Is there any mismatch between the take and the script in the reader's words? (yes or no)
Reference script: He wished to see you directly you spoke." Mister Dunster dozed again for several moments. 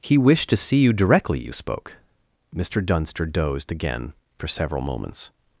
no